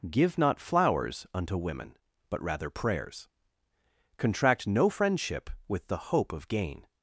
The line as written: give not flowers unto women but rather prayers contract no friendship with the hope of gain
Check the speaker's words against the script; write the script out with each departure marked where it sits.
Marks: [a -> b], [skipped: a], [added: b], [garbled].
give not flowers unto women but rather prayers contract no friendship with the hope of gain